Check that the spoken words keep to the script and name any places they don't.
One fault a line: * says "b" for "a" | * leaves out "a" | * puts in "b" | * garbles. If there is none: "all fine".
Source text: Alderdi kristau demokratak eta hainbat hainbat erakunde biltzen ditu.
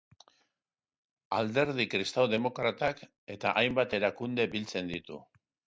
* leaves out "hainbat"